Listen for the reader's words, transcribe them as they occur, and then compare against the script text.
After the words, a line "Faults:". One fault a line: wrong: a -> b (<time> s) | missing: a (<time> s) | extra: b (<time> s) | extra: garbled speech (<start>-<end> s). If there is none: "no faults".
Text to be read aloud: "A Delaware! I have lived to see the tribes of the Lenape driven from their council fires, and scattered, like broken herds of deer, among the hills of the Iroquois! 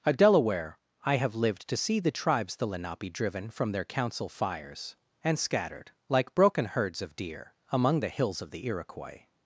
"A Delaware! I have lived to see the tribes the Lenape driven from their council fires, and scattered, like broken herds of deer, among the hills of the Iroquois!
Faults:
missing: of (2.5 s)